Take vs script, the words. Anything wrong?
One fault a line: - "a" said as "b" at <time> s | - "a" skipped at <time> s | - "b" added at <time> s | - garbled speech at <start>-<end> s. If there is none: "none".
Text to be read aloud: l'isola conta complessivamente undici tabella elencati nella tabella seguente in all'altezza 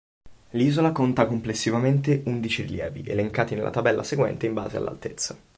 - "tabella" said as "rilievi" at 2.6 s
- "base" added at 4.5 s